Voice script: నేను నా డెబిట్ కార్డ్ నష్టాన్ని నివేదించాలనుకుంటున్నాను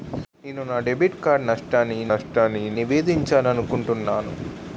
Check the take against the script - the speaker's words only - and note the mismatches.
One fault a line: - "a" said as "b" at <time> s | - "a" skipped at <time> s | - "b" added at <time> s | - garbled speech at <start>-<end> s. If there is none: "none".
- "నష్టాన్ని" added at 2.1 s